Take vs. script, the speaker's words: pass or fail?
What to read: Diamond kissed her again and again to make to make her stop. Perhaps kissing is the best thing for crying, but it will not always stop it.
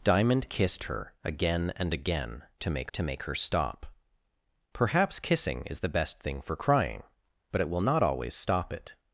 pass